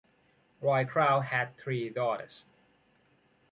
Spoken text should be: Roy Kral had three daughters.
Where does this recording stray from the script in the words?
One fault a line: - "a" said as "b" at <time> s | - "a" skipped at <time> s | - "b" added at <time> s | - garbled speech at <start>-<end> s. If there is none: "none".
none